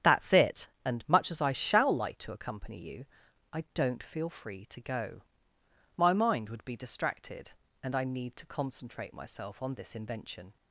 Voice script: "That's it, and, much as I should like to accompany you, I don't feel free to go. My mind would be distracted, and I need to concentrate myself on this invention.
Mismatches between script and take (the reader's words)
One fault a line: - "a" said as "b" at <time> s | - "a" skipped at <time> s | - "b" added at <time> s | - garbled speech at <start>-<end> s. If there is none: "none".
- "should" said as "shall" at 1.5 s